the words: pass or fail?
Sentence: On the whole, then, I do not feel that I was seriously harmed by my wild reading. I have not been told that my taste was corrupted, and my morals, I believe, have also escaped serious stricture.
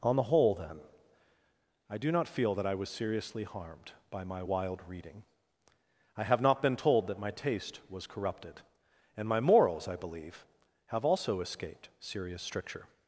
pass